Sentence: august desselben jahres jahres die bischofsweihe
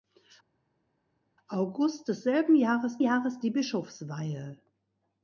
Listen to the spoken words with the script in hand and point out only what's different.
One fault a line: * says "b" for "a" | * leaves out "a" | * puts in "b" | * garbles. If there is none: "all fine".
all fine